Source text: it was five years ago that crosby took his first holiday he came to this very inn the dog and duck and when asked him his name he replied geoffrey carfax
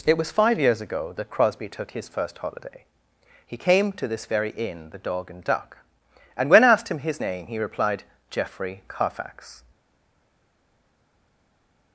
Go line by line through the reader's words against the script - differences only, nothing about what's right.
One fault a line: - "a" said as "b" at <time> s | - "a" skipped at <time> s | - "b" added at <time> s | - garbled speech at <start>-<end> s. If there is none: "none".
none